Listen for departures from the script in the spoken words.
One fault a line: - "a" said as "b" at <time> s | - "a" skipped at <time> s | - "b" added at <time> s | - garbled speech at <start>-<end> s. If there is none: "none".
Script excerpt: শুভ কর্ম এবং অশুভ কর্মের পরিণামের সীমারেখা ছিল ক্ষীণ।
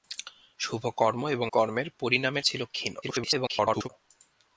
- "অশুভ" skipped at 1.5 s
- "সীমারেখা" skipped at 2.5 s
- garbled speech at 3.0-3.9 s